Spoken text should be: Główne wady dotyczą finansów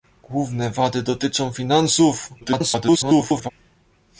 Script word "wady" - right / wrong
right